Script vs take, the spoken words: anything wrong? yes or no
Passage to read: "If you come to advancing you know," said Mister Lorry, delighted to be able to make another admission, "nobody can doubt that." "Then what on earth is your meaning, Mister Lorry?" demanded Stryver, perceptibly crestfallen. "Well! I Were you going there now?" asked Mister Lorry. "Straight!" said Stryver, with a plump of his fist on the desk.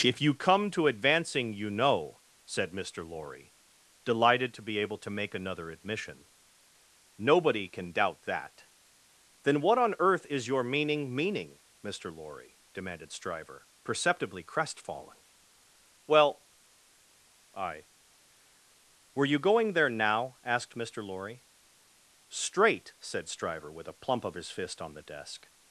yes